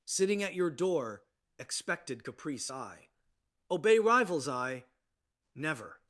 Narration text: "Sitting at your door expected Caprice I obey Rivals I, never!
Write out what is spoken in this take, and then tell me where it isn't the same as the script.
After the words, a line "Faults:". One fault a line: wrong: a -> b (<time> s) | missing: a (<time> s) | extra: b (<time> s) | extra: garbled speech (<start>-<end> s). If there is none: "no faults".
"Sitting at your door expected Caprice I obey Rivals I, never!
Faults:
no faults